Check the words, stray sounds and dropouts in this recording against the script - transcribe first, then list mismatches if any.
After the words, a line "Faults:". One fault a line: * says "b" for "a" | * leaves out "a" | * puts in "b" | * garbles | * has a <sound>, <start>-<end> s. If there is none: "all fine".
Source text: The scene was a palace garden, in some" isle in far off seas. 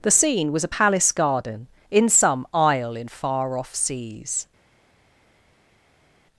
The scene was a palace garden, in some" isle in far off seas.
Faults:
all fine